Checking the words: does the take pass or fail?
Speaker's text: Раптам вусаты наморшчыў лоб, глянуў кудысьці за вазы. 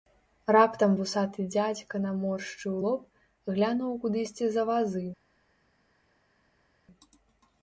fail